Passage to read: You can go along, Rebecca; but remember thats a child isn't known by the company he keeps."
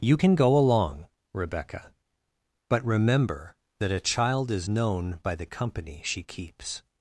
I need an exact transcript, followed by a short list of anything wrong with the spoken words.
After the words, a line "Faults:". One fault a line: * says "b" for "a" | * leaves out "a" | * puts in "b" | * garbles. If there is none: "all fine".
You can go along, Rebecca; but remember that a child is known by the company she keeps."
Faults:
* says "that" for "thats"
* says "is" for "isn't"
* says "she" for "he"